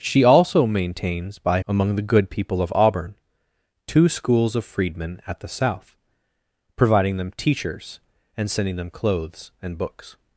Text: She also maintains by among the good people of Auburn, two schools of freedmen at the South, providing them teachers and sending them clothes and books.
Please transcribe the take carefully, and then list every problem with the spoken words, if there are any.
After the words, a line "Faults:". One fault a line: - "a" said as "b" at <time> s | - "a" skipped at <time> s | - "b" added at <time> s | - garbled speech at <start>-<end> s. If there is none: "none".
She also maintains by among the good people of Auburn, two schools of freedmen at the South, providing them teachers and sending them clothes and books.
Faults:
none